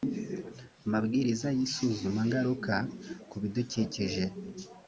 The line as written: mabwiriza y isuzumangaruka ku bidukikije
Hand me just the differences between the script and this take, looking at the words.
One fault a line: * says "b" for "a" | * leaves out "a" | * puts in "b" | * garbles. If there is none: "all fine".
all fine